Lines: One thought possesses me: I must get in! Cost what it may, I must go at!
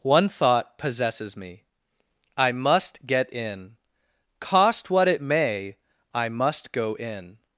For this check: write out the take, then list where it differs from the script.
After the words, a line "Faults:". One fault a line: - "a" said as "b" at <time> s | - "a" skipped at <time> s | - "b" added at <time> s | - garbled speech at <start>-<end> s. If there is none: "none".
One thought possesses me: I must get in! Cost what it may, I must go in!
Faults:
- "at" said as "in" at 6.9 s